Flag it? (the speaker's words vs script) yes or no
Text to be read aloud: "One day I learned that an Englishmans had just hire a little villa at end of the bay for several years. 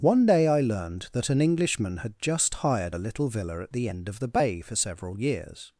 yes